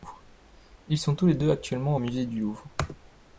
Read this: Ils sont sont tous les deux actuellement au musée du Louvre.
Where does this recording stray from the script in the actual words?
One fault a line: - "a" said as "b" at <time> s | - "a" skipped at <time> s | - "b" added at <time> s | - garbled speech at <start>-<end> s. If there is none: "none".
- "sont" skipped at 1.1 s